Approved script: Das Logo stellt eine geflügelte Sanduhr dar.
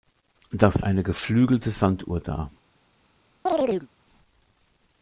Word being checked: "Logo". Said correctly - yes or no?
no